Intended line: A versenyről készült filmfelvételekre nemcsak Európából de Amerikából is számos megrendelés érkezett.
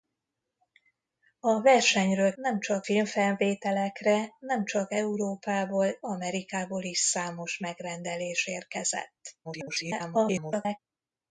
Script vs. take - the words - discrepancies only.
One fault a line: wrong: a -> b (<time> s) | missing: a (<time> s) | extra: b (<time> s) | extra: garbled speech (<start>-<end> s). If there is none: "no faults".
wrong: készült -> nemcsak (2.3 s)
missing: de (6.0 s)
extra: garbled speech (9.4-10.8 s)